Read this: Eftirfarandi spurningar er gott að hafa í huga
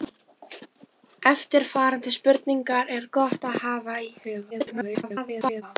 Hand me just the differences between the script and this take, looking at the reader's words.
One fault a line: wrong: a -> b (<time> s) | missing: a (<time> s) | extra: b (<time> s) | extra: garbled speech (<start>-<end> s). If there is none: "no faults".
extra: garbled speech (4.5-5.6 s)